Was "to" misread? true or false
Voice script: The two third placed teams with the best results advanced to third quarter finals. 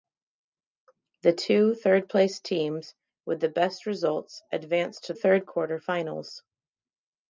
false